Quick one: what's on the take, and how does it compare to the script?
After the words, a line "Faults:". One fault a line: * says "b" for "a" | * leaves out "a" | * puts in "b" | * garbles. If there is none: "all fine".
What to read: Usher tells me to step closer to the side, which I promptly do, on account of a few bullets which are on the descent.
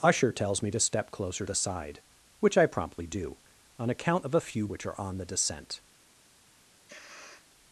Usher tells me to step closer the side, which I promptly do, on account of a few which are on the descent.
Faults:
* leaves out "to"
* leaves out "bullets"